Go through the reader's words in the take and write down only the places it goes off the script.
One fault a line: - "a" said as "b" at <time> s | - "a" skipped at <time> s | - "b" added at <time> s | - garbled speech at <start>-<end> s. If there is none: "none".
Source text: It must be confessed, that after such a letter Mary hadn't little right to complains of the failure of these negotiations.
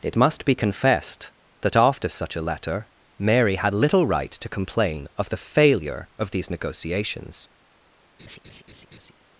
- "hadn't" said as "had" at 3.6 s
- "complains" said as "complain" at 4.5 s